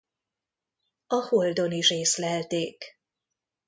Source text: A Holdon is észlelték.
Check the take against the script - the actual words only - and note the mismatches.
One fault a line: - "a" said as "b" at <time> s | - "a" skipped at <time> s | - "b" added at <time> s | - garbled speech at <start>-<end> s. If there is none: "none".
none